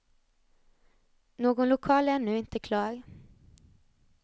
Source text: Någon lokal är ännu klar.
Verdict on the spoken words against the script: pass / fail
fail